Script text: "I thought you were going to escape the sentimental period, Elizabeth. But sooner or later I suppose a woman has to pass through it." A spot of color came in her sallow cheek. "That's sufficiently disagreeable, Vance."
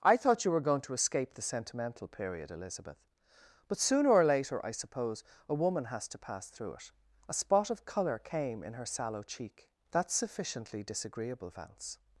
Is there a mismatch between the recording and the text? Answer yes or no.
no